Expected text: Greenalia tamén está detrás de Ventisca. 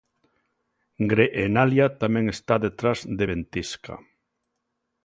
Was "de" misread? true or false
false